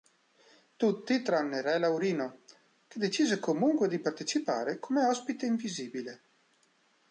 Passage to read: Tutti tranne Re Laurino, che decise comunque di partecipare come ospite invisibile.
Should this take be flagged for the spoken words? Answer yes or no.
no